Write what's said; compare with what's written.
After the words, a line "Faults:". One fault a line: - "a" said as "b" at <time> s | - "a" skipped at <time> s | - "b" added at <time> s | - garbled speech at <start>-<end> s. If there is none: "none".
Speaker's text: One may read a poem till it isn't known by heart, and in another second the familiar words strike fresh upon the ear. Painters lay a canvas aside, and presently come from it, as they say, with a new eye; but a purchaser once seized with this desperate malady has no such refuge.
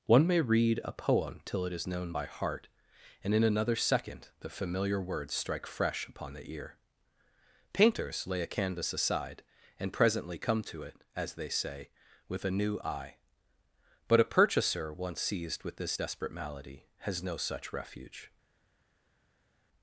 One may read a poem till it is known by heart, and in another second the familiar words strike fresh upon the ear. Painters lay a canvas aside, and presently come to it, as they say, with a new eye; but a purchaser once seized with this desperate malady has no such refuge.
Faults:
- "isn't" said as "is" at 1.7 s
- "from" said as "to" at 10.6 s